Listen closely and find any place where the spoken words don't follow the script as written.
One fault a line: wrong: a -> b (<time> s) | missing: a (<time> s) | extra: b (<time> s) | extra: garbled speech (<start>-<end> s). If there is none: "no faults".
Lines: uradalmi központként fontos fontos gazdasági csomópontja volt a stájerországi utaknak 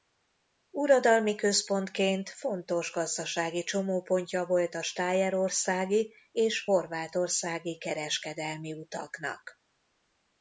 missing: fontos (2.9 s)
extra: és horvátországi kereskedelmi (6.3 s)